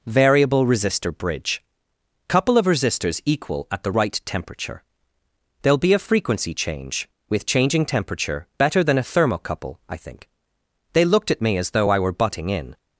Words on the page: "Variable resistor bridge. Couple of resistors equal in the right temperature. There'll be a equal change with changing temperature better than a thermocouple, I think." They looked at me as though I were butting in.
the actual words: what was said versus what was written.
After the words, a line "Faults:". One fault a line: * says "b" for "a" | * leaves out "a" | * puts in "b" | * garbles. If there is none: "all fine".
"Variable resistor bridge. Couple of resistors equal at the right temperature. There'll be a frequency change with changing temperature better than a thermocouple, I think." They looked at me as though I were butting in.
Faults:
* says "at" for "in"
* says "frequency" for "equal"